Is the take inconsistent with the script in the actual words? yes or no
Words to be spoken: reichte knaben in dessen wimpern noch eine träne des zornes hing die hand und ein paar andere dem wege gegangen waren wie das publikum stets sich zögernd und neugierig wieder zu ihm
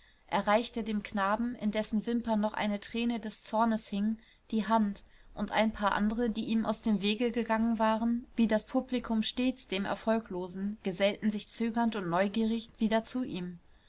yes